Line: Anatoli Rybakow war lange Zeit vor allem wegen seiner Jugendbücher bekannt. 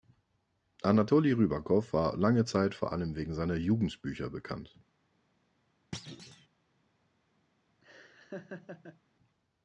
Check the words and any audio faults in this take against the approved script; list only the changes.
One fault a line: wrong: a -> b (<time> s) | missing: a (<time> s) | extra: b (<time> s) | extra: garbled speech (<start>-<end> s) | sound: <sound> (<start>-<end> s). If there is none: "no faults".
sound: thud (5.9-6.5 s)
sound: laugh (7.8-9.0 s)